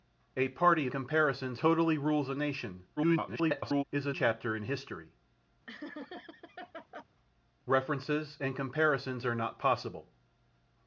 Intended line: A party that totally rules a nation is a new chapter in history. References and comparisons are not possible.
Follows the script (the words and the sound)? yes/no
no